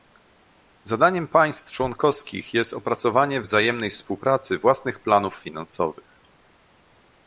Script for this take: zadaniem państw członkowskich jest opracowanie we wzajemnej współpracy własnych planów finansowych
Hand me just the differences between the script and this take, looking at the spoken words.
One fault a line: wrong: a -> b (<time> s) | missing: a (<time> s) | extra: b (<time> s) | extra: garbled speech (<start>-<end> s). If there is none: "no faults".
missing: we (3.4 s)